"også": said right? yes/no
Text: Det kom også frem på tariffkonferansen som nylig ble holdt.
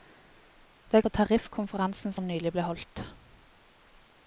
no